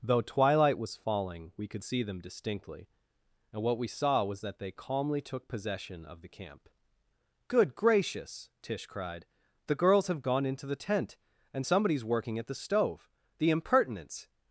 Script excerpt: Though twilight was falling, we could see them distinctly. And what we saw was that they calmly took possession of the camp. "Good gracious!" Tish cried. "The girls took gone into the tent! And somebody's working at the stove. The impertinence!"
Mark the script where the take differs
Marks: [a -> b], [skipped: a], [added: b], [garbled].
Though twilight was falling, we could see them distinctly. And what we saw was that they calmly took possession of the camp. "Good gracious!" Tish cried. "The girls [took -> have] gone into the tent! And somebody's working at the stove. The impertinence!"